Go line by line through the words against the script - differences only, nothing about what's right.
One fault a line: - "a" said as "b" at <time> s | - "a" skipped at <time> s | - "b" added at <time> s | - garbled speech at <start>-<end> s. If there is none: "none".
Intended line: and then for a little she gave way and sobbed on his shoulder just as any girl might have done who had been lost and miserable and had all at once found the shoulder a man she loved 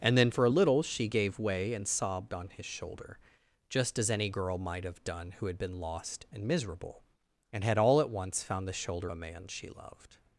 none